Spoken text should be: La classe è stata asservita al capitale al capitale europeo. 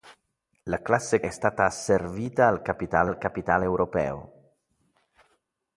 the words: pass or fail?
pass